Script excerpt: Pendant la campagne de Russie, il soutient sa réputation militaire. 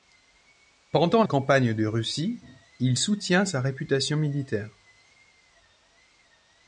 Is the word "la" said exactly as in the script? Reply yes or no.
no